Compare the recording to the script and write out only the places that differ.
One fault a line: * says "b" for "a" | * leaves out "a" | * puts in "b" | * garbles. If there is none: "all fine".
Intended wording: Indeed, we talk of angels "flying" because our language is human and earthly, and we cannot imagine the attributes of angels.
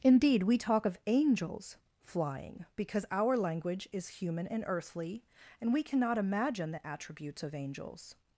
all fine